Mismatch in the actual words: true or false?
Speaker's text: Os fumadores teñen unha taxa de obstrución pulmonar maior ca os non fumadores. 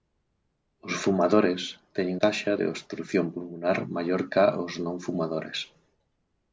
true